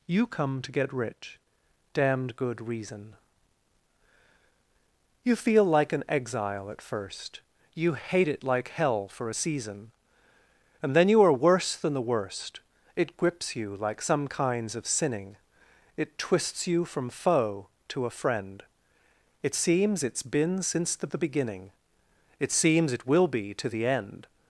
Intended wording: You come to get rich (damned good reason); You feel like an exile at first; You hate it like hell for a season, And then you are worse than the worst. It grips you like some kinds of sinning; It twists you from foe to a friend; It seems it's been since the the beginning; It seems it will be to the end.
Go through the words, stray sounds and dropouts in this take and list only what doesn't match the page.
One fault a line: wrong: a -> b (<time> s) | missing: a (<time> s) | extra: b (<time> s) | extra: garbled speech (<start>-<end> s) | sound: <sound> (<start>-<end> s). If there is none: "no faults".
no faults